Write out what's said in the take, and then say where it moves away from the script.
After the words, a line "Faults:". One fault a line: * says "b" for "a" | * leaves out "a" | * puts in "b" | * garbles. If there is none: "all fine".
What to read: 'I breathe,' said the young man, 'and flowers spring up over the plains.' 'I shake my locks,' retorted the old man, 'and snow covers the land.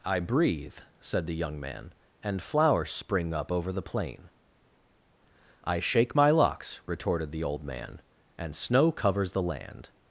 'I breathe,' said the young man, 'and flowers spring up over the plain.' 'I shake my locks,' retorted the old man, 'and snow covers the land.
Faults:
* says "plain" for "plains"